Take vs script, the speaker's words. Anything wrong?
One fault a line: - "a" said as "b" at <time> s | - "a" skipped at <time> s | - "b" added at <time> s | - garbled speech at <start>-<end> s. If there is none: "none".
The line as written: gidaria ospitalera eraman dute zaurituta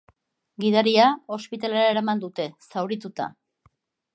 none